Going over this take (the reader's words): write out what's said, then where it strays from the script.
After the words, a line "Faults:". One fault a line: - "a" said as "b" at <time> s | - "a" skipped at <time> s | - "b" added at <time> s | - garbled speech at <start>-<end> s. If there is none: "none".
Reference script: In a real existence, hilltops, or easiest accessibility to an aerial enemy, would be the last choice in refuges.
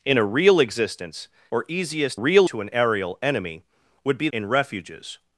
In a real existence, or easiest real to an aerial enemy, would be in refuges.
Faults:
- "hilltops" skipped at 1.3 s
- "accessibility" said as "real" at 2.1 s
- "the last choice" skipped at 4.3 s